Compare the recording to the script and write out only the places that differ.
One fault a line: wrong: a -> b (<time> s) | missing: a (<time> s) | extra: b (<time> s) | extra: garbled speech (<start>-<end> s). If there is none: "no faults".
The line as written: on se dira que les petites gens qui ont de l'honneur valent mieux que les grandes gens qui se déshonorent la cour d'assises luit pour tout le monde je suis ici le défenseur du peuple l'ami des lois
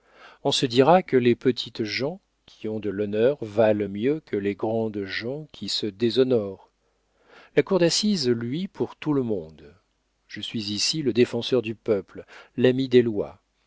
no faults